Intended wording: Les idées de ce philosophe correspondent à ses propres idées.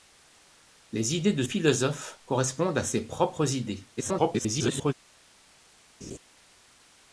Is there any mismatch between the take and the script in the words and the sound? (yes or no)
yes